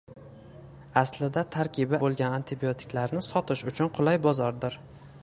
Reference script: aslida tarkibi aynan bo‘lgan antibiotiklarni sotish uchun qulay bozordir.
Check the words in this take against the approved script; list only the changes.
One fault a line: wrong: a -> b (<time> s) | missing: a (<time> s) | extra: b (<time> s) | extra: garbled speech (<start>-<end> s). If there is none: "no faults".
missing: aynan (2.0 s)